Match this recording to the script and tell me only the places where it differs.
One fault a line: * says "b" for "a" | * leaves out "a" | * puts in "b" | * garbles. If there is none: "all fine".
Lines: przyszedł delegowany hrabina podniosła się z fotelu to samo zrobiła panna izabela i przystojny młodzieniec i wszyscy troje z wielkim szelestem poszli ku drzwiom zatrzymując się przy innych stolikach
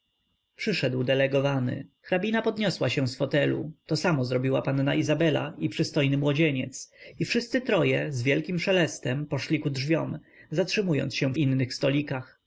* leaves out "przy"